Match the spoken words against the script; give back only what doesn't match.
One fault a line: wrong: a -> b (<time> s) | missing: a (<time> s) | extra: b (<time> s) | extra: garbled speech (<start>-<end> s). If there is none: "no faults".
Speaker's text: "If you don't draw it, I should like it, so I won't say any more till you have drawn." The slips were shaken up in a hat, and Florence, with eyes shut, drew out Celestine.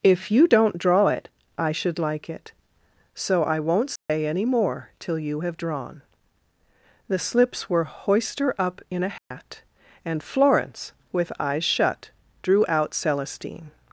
wrong: shaken -> hoister (7.8 s)